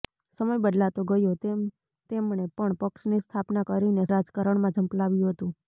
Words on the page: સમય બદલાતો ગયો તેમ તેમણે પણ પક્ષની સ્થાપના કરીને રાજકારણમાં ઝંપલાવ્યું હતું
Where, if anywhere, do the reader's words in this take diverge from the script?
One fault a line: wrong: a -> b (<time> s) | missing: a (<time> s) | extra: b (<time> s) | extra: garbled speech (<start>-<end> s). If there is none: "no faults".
no faults